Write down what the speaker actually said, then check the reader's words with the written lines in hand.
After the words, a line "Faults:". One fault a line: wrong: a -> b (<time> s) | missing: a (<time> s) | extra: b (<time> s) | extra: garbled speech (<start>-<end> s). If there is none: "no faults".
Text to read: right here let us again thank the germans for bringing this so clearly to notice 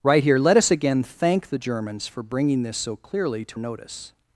right here let us again thank the germans for bringing this so clearly to notice
Faults:
no faults